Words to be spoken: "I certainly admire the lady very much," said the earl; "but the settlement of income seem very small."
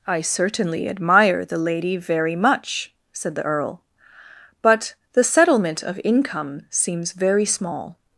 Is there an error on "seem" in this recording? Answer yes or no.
yes